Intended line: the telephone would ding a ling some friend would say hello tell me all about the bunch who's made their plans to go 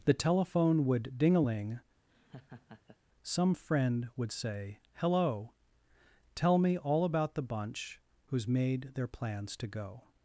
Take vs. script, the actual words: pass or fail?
pass